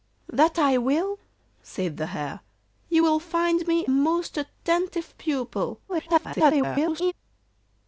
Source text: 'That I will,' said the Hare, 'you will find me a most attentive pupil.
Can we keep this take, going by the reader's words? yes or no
no